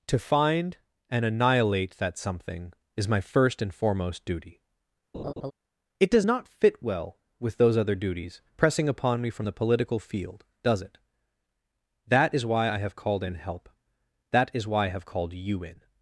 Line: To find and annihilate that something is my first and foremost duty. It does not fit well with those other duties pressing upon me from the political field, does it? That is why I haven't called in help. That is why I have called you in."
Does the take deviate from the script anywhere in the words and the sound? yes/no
yes